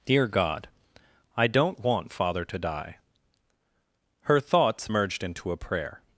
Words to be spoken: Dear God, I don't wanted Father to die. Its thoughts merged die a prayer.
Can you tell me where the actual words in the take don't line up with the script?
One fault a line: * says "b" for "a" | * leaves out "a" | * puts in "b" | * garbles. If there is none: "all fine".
* says "want" for "wanted"
* says "Her" for "Its"
* says "into" for "die"